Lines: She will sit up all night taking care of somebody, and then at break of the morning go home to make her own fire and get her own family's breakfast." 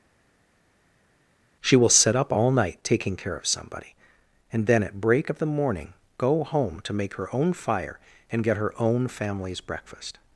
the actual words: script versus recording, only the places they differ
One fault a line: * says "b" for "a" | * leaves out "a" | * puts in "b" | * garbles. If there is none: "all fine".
all fine